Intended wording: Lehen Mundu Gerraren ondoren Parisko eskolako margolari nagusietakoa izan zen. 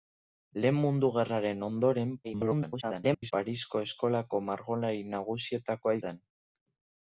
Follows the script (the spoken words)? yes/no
no